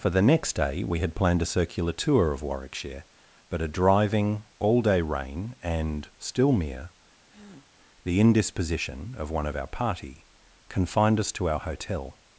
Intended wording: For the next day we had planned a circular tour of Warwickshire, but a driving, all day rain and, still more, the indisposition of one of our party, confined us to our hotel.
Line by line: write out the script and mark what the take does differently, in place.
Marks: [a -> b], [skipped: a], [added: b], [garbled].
For the next day we had planned a circular tour of Warwickshire, but a driving, all day rain and, still [more, -> mere] the indisposition of one of our party, confined us to our hotel.